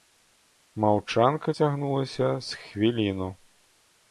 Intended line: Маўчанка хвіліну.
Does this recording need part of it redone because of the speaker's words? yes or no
yes